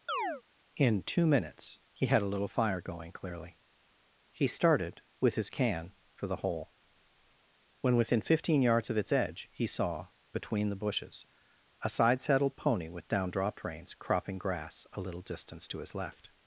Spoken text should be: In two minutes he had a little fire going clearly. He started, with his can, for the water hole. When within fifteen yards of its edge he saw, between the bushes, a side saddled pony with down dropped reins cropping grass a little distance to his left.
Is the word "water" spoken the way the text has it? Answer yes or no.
no